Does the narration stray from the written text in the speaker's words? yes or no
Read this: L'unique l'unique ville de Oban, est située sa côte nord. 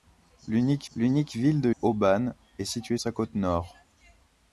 no